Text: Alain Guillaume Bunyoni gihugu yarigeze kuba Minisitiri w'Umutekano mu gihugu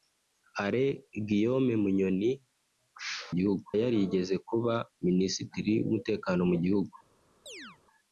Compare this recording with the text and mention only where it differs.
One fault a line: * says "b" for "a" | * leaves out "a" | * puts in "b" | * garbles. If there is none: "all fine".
all fine